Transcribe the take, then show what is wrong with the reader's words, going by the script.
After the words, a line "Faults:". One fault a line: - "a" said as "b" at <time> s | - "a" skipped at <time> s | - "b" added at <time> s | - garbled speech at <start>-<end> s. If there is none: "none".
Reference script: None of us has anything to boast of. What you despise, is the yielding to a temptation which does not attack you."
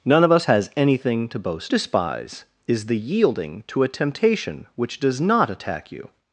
None of us has anything to boast despise, is the yielding to a temptation which does not attack you."
Faults:
- "of What you" skipped at 1.7 s